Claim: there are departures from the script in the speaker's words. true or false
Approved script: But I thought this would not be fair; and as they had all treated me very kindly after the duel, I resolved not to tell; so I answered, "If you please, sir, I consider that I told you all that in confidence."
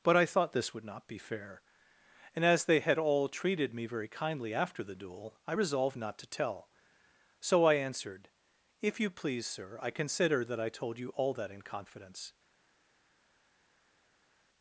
false